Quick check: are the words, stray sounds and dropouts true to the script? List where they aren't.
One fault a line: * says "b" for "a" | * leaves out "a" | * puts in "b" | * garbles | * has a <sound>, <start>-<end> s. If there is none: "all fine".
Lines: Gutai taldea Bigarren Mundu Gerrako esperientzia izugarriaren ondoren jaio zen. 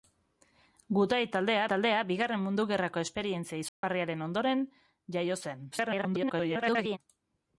* puts in "taldea"
* has a dropout, 3.7-3.8 s
* garbles